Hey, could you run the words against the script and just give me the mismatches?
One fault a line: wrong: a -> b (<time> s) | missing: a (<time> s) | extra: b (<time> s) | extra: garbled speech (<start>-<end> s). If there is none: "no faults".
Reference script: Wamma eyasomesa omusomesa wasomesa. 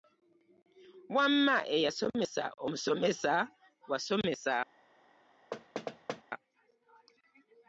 no faults